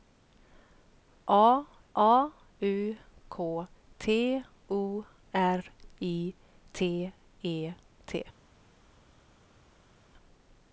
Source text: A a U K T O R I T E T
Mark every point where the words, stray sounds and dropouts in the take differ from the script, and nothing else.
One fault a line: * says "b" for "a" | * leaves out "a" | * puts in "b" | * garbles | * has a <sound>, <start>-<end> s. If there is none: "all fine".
all fine